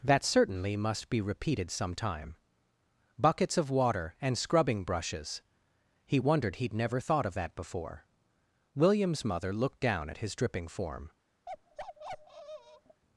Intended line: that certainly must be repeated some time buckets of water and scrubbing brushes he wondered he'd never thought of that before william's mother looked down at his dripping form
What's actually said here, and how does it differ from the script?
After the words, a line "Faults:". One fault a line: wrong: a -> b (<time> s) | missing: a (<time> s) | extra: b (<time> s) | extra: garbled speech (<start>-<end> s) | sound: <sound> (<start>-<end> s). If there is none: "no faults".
that certainly must be repeated some time buckets of water and scrubbing brushes he wondered he'd never thought of that before william's mother looked down at his dripping form
Faults:
sound: bark (11.5-13.0 s)